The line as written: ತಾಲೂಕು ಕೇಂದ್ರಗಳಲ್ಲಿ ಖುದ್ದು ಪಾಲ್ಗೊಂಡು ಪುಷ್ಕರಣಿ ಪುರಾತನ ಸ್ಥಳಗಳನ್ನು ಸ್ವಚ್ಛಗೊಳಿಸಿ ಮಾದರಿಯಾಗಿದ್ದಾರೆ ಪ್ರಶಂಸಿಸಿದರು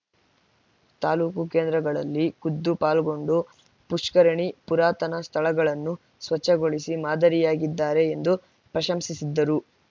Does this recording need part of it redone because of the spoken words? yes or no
yes